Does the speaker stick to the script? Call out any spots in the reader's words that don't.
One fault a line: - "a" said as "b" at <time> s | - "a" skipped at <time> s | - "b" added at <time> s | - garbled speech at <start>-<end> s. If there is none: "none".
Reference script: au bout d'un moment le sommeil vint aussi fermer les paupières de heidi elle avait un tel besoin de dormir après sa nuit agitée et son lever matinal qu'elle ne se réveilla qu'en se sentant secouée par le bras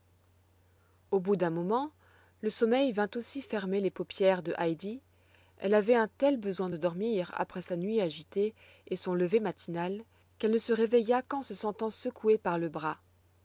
none